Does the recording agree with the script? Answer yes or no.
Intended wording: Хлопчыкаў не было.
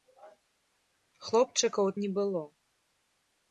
yes